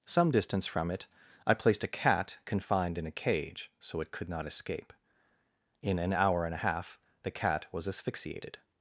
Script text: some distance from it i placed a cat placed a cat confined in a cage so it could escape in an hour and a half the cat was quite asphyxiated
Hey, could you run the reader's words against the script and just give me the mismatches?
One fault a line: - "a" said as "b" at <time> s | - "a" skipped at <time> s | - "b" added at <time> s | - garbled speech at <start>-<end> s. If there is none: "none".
- "placed a cat" skipped at 2.4 s
- "not" added at 4.3 s
- "quite" skipped at 7.9 s